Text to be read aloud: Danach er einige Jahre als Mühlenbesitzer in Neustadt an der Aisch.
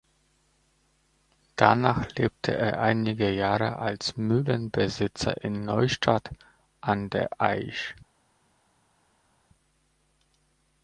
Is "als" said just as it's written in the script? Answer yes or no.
yes